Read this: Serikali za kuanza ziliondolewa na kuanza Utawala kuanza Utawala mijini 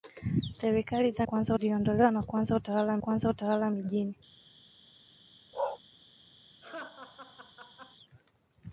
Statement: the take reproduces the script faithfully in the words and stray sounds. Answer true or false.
false